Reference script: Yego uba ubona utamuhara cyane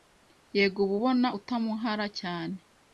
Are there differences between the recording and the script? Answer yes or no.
no